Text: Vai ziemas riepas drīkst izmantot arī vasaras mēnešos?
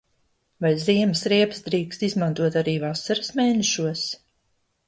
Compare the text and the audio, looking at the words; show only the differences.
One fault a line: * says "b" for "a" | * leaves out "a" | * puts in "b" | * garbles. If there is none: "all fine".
all fine